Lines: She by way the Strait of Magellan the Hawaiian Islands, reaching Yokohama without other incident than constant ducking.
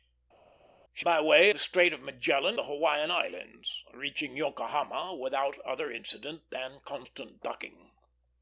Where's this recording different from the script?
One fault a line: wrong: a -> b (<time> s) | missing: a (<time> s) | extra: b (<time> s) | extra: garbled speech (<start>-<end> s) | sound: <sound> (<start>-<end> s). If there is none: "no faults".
no faults